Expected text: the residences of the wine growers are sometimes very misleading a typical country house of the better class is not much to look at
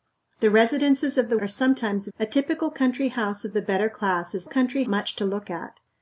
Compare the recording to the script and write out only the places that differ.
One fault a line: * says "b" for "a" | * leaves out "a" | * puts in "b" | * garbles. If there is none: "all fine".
* leaves out "wine growers"
* leaves out "very misleading"
* says "country" for "not"